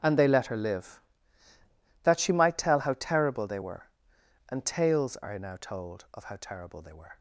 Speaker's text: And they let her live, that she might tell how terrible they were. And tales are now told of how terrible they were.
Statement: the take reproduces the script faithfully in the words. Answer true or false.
true